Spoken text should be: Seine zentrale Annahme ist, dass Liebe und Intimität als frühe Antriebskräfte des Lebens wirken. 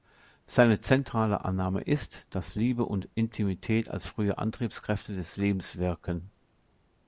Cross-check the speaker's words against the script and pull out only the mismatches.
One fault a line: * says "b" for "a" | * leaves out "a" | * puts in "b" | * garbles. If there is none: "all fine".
all fine